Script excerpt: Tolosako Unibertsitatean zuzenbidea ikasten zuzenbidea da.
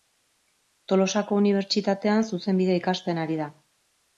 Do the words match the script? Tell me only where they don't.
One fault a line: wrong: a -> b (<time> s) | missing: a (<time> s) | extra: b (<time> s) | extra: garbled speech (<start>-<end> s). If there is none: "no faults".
wrong: zuzenbidea -> ari (3.3 s)